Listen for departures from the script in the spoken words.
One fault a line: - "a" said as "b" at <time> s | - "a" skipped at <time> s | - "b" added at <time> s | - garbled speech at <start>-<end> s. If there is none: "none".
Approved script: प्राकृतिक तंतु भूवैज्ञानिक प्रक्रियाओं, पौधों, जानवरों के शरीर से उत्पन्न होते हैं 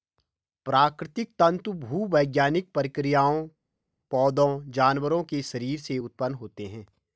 none